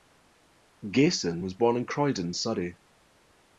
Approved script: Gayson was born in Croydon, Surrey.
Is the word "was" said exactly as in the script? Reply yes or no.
yes